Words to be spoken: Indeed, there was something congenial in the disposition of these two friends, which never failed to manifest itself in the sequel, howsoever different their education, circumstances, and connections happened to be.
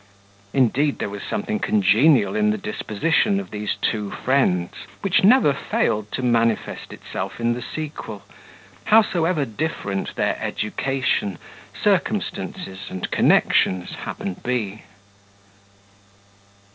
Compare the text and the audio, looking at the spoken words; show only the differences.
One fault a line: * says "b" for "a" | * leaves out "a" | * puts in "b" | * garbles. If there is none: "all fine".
* leaves out "to"